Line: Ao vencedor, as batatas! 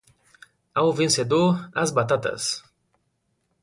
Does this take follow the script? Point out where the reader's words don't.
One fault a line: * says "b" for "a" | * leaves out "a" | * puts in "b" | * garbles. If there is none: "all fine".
all fine